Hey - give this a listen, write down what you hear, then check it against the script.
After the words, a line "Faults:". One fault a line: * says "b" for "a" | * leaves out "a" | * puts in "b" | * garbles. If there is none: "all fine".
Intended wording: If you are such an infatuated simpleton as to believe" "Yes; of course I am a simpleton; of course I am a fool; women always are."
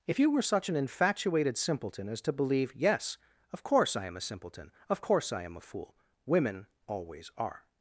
If you were such an infatuated simpleton as to believe" "Yes; of course I am a simpleton; of course I am a fool; women always are."
Faults:
* says "were" for "are"